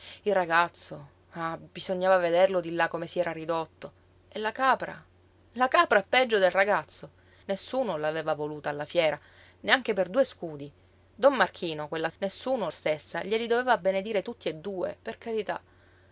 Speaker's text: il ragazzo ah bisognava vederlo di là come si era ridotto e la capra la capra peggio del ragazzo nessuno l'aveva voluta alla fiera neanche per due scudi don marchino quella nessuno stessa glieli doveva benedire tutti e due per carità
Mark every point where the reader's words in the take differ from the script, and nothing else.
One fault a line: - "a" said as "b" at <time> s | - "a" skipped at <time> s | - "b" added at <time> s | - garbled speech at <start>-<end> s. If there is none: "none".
none